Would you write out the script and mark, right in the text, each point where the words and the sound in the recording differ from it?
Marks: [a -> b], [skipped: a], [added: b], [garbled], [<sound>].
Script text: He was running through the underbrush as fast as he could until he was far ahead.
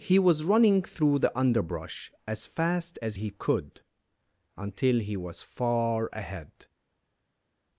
He was running through the underbrush as fast as he could until he was far ahead.